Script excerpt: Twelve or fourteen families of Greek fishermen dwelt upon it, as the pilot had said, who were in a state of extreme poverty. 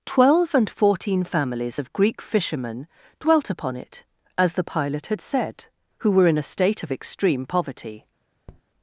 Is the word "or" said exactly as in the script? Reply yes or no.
no